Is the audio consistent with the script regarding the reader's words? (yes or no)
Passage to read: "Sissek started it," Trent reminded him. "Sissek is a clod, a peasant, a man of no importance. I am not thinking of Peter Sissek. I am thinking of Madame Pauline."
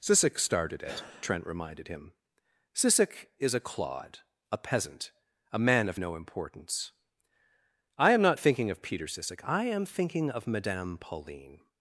yes